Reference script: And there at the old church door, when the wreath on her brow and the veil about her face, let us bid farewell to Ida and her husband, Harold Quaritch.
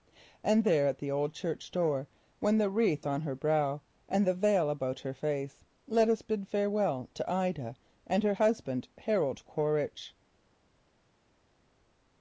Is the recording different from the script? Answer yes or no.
no